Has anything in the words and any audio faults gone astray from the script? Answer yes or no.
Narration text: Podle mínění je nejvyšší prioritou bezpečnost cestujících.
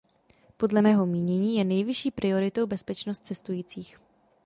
yes